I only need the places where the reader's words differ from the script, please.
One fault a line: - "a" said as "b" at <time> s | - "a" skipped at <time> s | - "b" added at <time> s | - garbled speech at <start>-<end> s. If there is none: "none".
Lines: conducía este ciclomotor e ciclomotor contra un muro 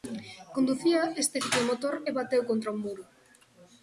- "ciclomotor" said as "bateu" at 2.2 s